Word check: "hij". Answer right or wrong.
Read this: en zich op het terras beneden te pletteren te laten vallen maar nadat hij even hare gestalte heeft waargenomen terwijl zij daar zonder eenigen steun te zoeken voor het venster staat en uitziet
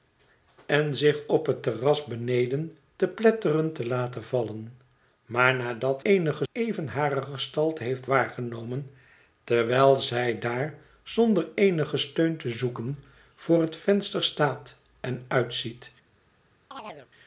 wrong